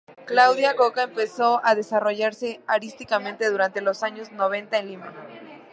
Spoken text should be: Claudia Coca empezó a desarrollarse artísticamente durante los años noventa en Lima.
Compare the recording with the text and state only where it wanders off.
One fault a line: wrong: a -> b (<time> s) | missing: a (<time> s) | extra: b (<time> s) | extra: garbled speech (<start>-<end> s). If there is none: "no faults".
no faults